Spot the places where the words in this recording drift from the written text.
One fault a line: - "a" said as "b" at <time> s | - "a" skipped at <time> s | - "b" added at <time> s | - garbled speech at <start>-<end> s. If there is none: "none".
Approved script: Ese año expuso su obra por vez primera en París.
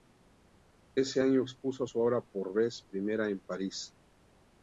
none